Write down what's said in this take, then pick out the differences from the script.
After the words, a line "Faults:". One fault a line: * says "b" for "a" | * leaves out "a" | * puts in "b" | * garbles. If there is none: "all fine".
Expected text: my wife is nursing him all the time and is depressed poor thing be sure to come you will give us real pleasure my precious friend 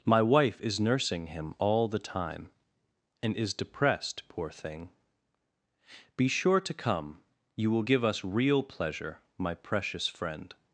my wife is nursing him all the time and is depressed poor thing be sure to come you will give us real pleasure my precious friend
Faults:
all fine